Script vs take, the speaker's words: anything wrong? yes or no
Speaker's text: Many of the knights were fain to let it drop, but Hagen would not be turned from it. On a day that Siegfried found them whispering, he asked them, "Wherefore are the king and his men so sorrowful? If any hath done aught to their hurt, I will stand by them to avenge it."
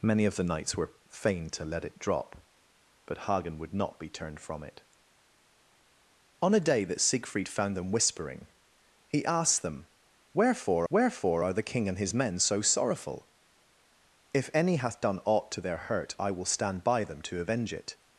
yes